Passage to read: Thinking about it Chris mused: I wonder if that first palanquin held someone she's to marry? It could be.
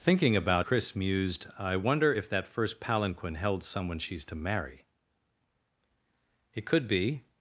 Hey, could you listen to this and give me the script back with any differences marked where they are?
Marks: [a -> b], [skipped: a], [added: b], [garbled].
Thinking about [skipped: it] Chris mused: I wonder if that first palanquin held someone she's to marry? It could be.